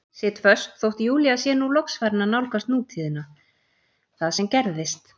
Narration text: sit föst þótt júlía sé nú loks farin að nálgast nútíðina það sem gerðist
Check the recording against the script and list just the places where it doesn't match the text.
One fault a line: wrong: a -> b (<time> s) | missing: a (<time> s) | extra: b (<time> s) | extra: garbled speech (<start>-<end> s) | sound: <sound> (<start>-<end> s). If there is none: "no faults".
no faults